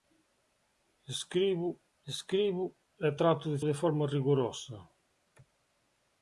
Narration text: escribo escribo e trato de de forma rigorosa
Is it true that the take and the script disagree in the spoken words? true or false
false